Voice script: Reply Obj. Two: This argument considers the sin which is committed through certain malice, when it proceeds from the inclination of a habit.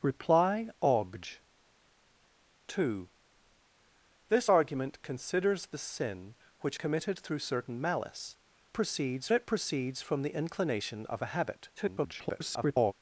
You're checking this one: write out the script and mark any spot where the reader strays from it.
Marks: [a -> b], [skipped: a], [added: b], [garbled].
Reply Obj. Two: This argument considers the sin which [skipped: is] committed through certain malice, [when -> proceeds] it proceeds from the inclination of a habit. [garbled]